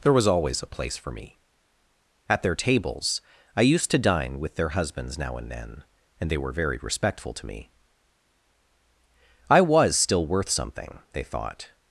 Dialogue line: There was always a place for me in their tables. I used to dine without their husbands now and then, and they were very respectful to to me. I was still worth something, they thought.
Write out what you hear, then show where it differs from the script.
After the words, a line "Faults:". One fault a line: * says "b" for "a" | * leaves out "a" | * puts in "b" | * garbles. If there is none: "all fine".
There was always a place for me at their tables. I used to dine with their husbands now and then, and they were very respectful to me. I was still worth something, they thought.
Faults:
* says "at" for "in"
* says "with" for "without"
* leaves out "to"